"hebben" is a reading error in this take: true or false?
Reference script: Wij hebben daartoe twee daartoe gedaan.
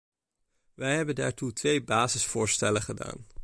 false